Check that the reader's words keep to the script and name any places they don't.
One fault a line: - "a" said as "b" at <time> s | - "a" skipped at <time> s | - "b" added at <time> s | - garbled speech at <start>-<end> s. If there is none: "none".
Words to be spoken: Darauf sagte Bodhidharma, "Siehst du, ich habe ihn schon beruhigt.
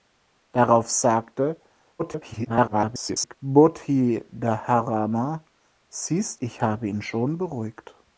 - garbled speech at 2.0-3.4 s
- "du" skipped at 6.4 s